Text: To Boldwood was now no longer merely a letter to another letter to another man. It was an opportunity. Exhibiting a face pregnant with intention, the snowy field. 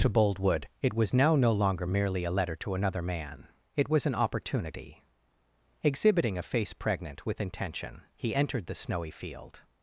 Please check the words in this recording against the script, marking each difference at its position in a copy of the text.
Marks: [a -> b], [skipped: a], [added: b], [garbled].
To Boldwood [added: it] was now no longer merely a letter to another [skipped: letter to another] man. It was an opportunity. Exhibiting a face pregnant with intention, [added: he entered] the snowy field.